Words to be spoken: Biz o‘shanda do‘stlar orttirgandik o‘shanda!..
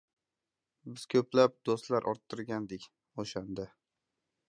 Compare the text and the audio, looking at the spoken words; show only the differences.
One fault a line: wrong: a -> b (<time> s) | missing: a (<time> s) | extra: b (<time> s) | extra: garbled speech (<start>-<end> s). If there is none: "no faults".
wrong: o‘shanda -> ko‘plab (1.1 s)